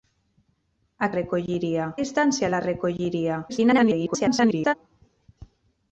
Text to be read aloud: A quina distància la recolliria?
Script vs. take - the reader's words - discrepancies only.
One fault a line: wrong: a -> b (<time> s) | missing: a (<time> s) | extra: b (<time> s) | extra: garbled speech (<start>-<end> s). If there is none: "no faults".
wrong: quina -> recolliria (1.2 s)
extra: garbled speech (3.5-4.7 s)